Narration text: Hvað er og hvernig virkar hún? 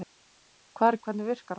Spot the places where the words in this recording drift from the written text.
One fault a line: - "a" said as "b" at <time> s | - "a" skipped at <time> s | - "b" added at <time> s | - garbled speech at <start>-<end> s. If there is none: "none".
none